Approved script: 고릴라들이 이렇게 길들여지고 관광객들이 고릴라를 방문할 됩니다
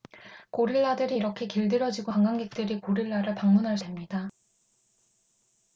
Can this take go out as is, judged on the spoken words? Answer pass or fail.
pass